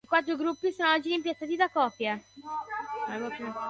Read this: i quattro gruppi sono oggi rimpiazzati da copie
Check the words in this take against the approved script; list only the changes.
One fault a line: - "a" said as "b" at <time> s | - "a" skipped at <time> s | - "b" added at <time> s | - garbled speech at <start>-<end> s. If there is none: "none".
none